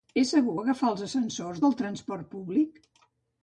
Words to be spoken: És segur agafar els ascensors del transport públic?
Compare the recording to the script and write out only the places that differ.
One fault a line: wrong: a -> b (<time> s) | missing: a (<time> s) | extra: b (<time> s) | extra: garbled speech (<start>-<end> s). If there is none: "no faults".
no faults